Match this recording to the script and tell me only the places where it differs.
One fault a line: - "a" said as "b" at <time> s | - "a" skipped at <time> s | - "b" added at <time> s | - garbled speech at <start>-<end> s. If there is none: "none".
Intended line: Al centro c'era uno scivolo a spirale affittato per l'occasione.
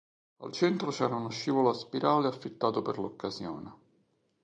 none